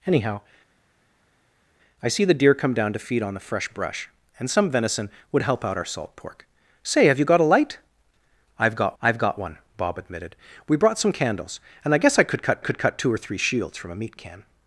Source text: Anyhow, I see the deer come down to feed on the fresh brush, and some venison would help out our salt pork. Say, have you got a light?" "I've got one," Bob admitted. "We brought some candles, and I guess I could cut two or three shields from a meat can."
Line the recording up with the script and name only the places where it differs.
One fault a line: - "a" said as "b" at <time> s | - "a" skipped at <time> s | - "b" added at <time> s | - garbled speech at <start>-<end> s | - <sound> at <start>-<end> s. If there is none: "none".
- "I've got" added at 9.0 s
- "could cut" added at 12.6 s